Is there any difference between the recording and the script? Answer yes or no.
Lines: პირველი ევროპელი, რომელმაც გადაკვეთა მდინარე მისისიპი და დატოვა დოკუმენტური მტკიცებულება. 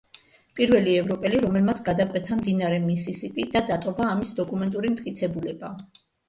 yes